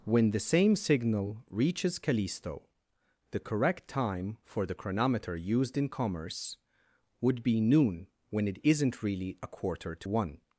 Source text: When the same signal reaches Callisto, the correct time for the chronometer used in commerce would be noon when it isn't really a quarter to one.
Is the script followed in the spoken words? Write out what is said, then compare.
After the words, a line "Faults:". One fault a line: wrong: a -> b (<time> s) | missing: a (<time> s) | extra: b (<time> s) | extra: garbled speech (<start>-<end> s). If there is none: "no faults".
When the same signal reaches Callisto, the correct time for the chronometer used in commerce would be noon when it isn't really a quarter to one.
Faults:
no faults